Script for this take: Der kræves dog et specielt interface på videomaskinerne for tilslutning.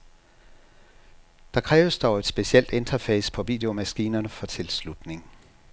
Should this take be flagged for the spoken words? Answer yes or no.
no